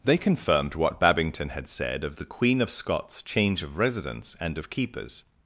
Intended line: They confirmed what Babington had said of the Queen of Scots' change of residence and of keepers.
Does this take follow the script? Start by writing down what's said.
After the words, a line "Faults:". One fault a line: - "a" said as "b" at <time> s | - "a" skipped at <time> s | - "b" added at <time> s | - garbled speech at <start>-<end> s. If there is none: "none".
They confirmed what Babington had said of the Queen of Scots' change of residence and of keepers.
Faults:
none